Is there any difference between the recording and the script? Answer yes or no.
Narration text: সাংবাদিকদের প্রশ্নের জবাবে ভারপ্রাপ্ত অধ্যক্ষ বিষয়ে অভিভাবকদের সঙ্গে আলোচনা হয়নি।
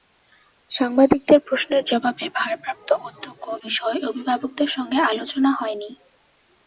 no